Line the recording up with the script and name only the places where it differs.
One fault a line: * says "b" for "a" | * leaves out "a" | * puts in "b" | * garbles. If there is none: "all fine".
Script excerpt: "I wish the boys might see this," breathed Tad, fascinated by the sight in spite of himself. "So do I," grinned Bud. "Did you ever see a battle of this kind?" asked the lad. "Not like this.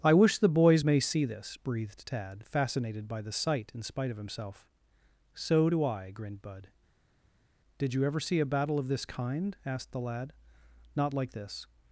* says "may" for "might"